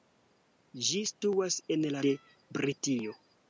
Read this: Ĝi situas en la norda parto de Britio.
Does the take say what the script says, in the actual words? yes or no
no